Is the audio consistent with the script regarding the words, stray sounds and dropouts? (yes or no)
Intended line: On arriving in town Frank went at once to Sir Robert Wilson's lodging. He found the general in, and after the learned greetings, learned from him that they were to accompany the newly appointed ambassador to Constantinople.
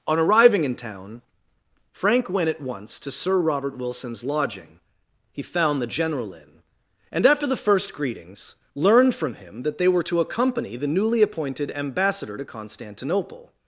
no